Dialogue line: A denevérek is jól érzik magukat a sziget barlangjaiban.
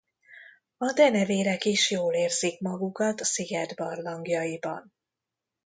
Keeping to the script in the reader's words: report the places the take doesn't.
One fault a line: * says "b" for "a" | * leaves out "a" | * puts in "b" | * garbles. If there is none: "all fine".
* leaves out "a"